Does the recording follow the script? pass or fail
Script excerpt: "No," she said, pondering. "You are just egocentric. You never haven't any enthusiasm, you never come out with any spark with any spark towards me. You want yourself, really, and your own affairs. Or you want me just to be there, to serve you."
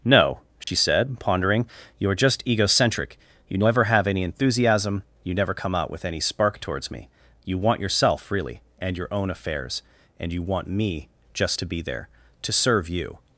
fail